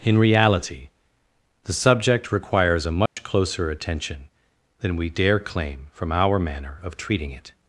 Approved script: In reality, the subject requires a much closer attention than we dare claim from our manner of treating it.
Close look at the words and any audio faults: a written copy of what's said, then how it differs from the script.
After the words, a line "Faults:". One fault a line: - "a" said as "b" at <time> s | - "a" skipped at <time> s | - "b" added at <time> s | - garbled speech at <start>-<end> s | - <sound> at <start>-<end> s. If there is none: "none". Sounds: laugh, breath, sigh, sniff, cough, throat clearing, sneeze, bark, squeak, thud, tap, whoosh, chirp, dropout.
In reality, the subject requires a much closer attention than we dare claim from our manner of treating it.
Faults:
- dropout at 3.1-3.2 s